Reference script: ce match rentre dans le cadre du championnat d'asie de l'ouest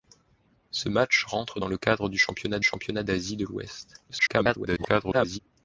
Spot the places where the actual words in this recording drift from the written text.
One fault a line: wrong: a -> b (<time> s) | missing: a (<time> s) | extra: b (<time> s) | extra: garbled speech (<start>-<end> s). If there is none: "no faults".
extra: championnat (2.6 s)
extra: garbled speech (4.1-5.4 s)